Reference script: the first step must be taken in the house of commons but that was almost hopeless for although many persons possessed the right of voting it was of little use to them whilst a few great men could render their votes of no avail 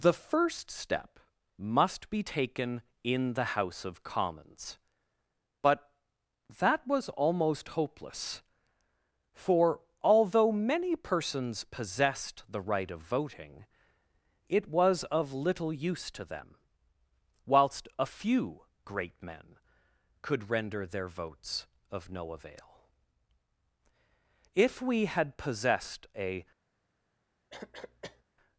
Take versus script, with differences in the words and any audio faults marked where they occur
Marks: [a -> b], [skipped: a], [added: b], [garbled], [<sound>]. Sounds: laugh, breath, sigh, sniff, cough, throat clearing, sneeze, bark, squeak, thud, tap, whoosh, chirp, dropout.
the first step must be taken in the house of commons but that was almost hopeless for although many persons possessed the right of voting it was of little use to them whilst a few great men could render their votes of no avail [added: if we had possessed a] [cough]